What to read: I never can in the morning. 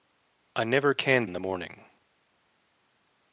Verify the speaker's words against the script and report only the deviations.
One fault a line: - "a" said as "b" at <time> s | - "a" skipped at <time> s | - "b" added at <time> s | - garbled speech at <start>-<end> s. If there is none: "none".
none